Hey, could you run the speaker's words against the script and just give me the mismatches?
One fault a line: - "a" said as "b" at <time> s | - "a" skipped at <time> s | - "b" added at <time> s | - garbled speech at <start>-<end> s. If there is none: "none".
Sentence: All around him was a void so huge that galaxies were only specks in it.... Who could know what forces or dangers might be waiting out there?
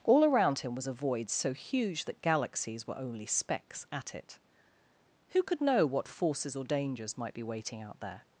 - "in" said as "at" at 3.9 s